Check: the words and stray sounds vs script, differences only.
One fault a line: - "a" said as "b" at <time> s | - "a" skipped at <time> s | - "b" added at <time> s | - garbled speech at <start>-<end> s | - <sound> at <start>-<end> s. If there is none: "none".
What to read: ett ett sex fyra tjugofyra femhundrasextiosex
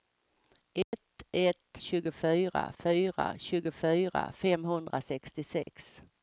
- dropout at 0.8-0.9 s
- "sex" said as "tjugofyra" at 1.8 s
- dropout at 5.6-5.7 s